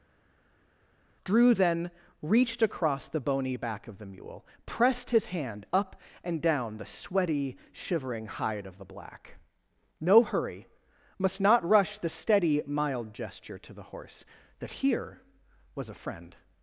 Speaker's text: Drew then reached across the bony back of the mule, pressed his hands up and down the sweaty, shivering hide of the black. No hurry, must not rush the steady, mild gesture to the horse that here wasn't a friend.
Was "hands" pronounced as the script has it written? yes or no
no